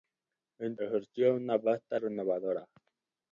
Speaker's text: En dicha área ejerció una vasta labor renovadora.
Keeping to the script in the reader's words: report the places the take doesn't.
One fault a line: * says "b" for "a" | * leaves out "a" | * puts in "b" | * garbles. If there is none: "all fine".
* leaves out "dicha área"
* leaves out "labor"